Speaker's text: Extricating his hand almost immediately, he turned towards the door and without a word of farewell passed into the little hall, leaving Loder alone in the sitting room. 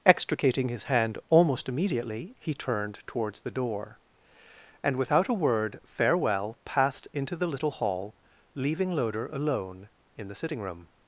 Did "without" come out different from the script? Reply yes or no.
no